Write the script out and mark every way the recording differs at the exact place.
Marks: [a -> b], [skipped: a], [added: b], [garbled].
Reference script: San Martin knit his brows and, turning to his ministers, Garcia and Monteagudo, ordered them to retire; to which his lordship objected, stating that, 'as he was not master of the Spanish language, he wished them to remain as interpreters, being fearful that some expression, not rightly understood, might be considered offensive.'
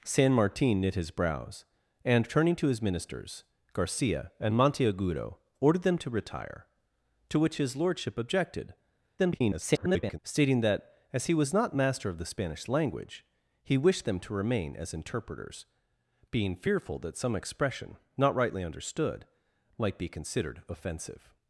San Martin knit his brows and, turning to his ministers, Garcia and Monteagudo, ordered them to retire; to which his lordship objected, [garbled] stating that, 'as he was not master of the Spanish language, he wished them to remain as interpreters, being fearful that some expression, not rightly understood, might be considered offensive.'